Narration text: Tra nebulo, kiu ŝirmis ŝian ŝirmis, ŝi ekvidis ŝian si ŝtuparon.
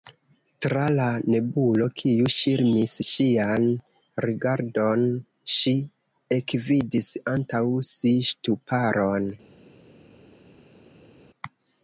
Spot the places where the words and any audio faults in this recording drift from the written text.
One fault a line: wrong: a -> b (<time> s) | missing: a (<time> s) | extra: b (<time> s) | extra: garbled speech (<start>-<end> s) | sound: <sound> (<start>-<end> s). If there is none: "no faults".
extra: la (0.9 s)
wrong: ŝirmis -> rigardon (4.3 s)
wrong: ŝian -> antaŭ (7.4 s)